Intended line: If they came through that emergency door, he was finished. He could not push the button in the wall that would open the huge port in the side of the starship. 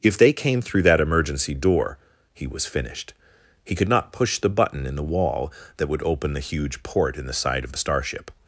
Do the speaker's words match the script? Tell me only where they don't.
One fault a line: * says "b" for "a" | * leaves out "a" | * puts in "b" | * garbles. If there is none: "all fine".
all fine